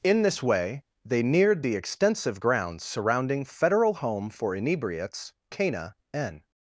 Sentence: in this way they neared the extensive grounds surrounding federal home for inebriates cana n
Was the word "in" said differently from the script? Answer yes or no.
no